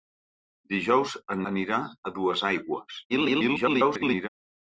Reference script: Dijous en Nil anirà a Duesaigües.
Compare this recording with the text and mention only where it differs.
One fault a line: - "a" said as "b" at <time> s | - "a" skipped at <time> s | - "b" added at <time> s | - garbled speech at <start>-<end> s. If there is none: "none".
- "Nil" skipped at 1.4 s
- garbled speech at 3.1-4.3 s